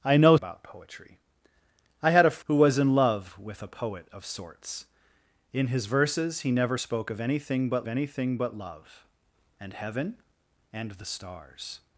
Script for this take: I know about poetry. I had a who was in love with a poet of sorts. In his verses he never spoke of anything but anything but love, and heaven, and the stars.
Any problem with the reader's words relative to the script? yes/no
no